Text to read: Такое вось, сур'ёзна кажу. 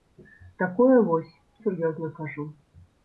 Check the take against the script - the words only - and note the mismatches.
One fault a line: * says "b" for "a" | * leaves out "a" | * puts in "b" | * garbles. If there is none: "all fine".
all fine